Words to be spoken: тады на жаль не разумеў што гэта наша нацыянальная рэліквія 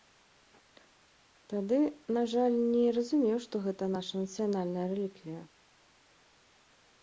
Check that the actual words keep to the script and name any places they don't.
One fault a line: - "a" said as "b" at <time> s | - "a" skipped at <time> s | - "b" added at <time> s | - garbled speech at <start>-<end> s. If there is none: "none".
none